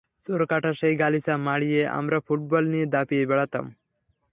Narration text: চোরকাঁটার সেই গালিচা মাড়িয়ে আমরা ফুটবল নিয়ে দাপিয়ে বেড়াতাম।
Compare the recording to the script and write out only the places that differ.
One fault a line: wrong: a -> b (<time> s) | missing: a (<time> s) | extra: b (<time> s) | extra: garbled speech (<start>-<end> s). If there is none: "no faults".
no faults